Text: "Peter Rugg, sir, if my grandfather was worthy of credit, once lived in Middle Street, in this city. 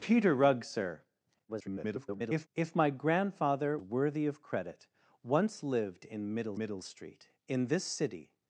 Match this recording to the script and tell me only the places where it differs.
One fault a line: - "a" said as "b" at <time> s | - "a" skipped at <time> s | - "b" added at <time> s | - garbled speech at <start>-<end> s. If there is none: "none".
- garbled speech at 1.5-2.5 s
- "was" skipped at 3.8 s
- "Middle" added at 6.6 s